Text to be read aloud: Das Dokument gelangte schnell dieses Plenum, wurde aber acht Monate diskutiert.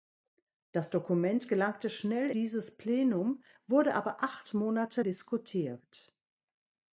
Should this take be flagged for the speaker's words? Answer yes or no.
no